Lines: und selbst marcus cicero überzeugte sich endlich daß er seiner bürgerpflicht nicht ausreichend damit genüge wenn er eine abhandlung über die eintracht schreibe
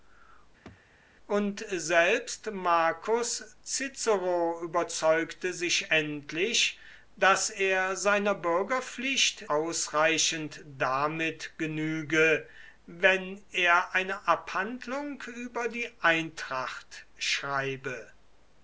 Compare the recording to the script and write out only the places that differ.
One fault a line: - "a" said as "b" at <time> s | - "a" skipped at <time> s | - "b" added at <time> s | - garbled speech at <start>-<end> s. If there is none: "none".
- "nicht" skipped at 9.5 s